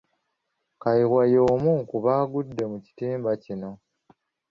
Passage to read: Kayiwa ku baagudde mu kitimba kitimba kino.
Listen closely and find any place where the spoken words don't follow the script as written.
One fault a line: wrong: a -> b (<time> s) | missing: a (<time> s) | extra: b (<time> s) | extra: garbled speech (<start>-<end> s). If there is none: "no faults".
extra: y'omu (1.3 s)
missing: kitimba (3.3 s)